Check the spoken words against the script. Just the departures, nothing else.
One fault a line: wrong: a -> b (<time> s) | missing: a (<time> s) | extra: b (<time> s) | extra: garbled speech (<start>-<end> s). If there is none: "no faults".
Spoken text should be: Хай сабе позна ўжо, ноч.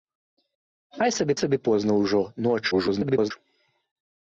extra: сабе (1.4 s)
extra: garbled speech (2.7-3.3 s)